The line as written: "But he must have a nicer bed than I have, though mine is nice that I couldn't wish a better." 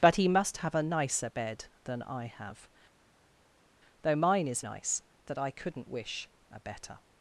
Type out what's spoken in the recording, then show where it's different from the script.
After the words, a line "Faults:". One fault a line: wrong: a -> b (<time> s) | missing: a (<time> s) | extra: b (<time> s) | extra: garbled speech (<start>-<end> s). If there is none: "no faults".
"But he must have a nicer bed than I have, though mine is nice that I couldn't wish a better."
Faults:
no faults